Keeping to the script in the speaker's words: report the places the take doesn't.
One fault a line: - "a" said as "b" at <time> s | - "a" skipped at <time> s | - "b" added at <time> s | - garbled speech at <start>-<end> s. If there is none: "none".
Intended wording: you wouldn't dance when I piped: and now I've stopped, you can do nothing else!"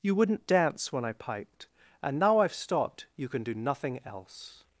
none